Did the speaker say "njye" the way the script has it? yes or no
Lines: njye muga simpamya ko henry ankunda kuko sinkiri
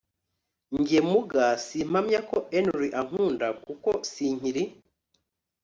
yes